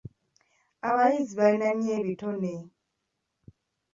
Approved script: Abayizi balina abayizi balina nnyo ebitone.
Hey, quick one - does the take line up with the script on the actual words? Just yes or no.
no